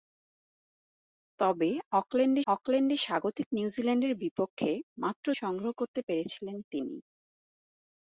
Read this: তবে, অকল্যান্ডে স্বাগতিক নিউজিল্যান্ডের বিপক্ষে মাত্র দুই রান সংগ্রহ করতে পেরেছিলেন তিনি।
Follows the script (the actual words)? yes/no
no